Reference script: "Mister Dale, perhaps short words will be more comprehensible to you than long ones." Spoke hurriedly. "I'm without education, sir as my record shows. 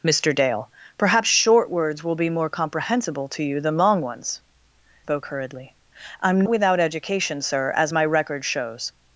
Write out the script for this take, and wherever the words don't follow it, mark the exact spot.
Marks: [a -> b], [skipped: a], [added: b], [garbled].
"Mister Dale, perhaps short words will be more comprehensible to you than long ones." Spoke hurriedly. "I'm without education, sir as my record shows.